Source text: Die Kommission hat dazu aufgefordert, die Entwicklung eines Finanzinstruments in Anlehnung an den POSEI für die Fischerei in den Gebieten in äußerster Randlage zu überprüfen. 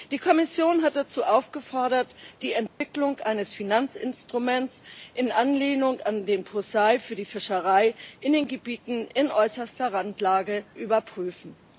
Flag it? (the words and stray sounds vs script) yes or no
yes